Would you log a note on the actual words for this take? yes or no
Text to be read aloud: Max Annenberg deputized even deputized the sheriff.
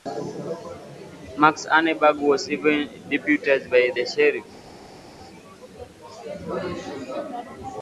yes